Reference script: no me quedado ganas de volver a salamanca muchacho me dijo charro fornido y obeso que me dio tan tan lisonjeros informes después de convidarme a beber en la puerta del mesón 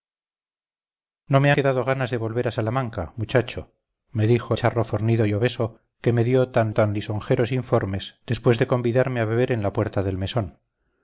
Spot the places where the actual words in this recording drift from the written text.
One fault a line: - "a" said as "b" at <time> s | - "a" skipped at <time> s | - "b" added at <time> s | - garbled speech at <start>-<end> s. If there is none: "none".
none